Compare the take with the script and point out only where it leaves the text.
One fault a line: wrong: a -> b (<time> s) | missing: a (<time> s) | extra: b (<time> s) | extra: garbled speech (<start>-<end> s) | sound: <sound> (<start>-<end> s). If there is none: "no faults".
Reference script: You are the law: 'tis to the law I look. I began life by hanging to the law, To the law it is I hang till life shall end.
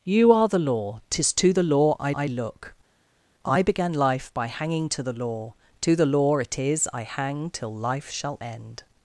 extra: I (2.1 s)